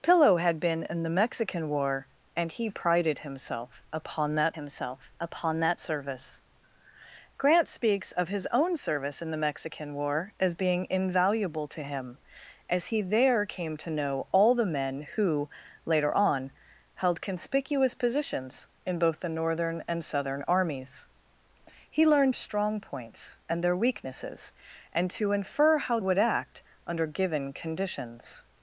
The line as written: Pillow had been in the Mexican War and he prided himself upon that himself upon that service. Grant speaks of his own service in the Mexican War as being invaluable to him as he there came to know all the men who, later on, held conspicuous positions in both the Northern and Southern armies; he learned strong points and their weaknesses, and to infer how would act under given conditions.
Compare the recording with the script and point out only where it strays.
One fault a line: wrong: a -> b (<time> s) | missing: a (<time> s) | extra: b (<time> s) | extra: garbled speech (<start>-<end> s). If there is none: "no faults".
no faults